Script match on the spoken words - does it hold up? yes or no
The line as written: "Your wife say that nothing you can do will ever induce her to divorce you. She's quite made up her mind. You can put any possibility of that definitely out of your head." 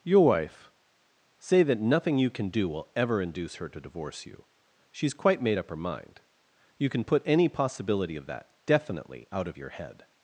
yes